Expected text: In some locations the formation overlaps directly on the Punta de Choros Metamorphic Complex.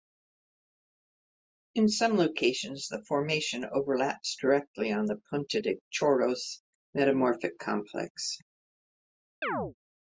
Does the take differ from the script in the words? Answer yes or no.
no